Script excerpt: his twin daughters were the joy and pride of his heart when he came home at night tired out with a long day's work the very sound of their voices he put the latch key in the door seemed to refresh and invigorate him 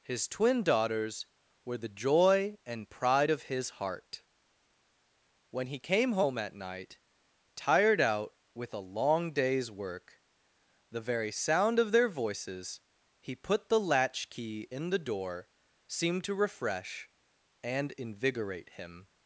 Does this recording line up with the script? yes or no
yes